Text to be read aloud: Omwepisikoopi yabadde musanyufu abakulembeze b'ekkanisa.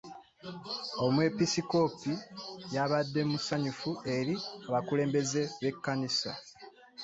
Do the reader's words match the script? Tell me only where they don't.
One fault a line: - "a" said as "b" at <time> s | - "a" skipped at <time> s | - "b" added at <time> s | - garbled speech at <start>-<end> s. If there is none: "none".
- "eri" added at 4.2 s